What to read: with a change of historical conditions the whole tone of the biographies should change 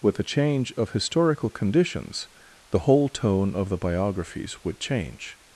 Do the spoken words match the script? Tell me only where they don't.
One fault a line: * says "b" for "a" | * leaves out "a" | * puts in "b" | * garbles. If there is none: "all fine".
* says "would" for "should"